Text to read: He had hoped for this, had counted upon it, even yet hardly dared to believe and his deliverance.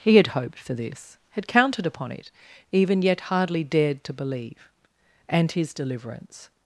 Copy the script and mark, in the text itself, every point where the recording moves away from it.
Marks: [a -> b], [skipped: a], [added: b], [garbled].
He had hoped for this, had counted upon it, even yet hardly dared to believe and his deliverance.